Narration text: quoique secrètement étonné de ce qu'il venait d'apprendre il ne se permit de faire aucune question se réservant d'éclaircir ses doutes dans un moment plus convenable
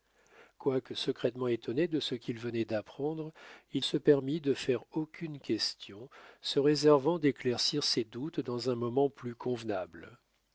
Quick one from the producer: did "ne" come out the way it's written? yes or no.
no